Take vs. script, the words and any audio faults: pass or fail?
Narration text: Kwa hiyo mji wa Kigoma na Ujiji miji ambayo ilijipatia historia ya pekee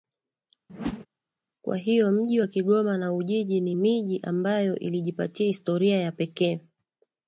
fail